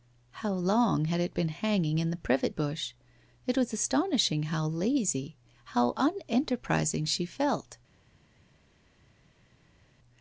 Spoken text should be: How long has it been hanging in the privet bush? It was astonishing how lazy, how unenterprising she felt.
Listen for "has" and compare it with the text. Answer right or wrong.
wrong